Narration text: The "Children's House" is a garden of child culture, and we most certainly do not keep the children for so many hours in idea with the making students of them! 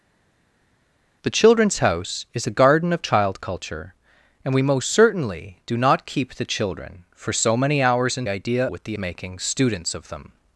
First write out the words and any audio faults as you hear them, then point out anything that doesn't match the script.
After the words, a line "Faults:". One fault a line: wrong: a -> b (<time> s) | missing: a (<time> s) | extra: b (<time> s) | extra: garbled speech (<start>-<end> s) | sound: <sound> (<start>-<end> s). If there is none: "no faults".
The "Children's House" is a garden of child culture, and we most certainly do not keep the children for so many hours in idea with the making students of them!
Faults:
no faults